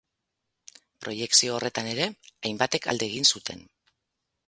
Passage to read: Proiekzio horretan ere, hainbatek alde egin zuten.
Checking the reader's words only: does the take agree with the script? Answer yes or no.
yes